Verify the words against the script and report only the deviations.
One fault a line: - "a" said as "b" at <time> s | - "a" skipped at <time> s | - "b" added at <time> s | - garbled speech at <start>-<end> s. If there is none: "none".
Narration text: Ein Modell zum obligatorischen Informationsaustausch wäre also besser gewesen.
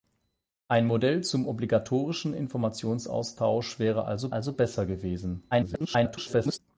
- "also" added at 4.3 s
- garbled speech at 5.5-6.6 s